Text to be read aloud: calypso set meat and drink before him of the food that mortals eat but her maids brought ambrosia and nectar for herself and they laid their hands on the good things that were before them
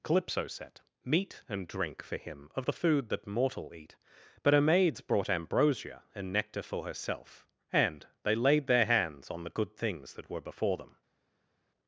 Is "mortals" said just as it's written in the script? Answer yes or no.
no